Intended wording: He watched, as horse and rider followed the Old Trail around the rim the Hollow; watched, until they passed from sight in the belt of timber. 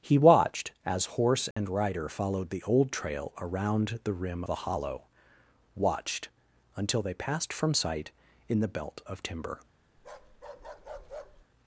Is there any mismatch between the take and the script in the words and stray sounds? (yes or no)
yes